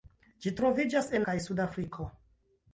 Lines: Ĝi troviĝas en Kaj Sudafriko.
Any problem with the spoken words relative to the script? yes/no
no